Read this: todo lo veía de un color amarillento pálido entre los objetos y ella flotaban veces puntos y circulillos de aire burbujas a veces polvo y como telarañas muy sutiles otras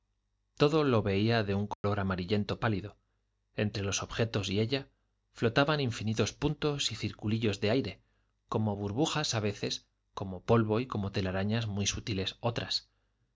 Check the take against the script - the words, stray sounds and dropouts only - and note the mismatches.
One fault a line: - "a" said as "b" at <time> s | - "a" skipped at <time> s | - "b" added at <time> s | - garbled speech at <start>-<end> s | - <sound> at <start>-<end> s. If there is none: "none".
- dropout at 1.7-1.8 s
- "veces" said as "infinitos" at 5.8 s
- "como" added at 8.5 s
- "como" added at 10.1 s